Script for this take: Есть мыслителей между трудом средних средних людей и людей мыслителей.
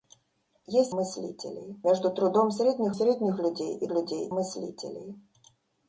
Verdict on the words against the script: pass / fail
pass